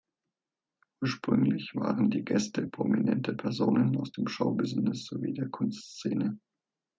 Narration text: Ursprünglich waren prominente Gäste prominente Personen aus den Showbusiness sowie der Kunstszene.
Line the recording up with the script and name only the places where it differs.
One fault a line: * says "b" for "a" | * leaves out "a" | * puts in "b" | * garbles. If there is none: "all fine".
* says "die" for "prominente"
* says "dem" for "den"